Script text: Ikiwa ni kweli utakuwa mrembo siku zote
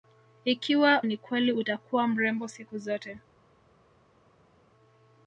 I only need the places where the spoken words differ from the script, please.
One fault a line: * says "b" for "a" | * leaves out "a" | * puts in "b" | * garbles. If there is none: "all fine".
all fine